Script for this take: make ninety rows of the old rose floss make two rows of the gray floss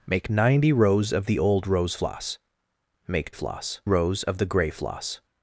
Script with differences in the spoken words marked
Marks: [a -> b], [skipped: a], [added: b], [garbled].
make ninety rows of the old rose floss make [two -> floss] rows of the gray floss